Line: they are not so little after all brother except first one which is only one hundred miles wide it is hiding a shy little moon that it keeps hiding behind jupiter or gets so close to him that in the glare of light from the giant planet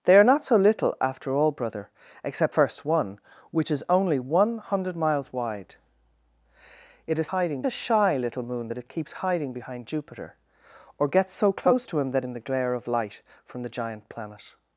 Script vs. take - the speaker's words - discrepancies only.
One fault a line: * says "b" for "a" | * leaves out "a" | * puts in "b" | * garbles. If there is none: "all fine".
all fine